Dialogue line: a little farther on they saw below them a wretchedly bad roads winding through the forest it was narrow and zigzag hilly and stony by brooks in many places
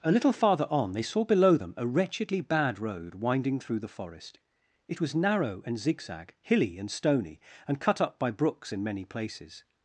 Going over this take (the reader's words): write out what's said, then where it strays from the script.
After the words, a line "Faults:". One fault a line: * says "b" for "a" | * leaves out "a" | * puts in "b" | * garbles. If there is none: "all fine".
a little farther on they saw below them a wretchedly bad road winding through the forest it was narrow and zigzag hilly and stony and cut up by brooks in many places
Faults:
* says "road" for "roads"
* puts in "and cut up"